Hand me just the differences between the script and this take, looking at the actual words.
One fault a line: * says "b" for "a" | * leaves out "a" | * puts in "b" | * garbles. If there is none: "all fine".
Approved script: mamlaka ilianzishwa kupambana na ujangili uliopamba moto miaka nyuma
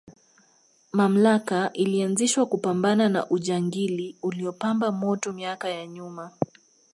* puts in "ya"